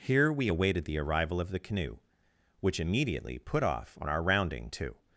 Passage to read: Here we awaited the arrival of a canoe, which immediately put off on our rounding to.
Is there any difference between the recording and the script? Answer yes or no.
yes